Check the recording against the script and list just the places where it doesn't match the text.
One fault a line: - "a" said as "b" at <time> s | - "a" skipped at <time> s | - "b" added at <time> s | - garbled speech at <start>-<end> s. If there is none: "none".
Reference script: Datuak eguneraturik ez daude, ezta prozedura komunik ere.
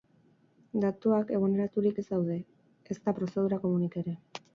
none